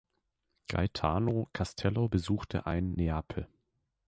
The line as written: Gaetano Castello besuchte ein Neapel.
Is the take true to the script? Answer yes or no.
yes